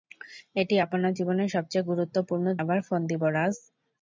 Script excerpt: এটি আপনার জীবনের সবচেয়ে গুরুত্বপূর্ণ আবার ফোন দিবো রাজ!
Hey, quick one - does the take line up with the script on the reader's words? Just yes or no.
yes